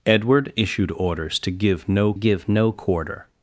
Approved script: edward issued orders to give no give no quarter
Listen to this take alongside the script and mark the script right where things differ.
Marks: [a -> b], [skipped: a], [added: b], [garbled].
edward issued orders to give no give no quarter